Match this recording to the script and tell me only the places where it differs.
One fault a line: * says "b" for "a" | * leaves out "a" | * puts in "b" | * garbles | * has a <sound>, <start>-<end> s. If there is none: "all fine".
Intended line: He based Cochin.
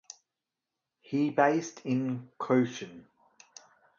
* puts in "in"